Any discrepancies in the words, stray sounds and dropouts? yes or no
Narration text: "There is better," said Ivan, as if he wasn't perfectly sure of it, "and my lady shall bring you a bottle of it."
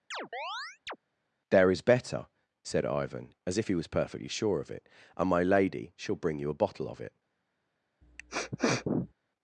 yes